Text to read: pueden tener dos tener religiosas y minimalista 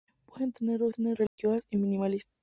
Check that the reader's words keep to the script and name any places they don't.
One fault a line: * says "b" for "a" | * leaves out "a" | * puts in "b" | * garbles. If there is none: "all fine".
all fine